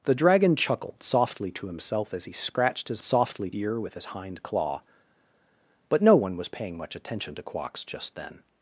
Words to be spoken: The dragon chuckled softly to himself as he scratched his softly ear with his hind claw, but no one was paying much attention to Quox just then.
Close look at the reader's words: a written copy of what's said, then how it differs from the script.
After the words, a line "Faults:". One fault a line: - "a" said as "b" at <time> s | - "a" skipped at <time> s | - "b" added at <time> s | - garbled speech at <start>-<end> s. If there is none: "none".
The dragon chuckled softly to himself as he scratched his softly ear with his hind claw, but no one was paying much attention to Quox just then.
Faults:
none